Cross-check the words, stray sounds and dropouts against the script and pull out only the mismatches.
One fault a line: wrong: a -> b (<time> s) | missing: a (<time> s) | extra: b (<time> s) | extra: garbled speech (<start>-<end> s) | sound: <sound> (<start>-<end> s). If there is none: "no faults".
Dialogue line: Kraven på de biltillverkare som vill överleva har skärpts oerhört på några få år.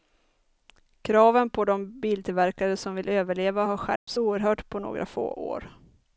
sound: dropout (4.0-4.1 s)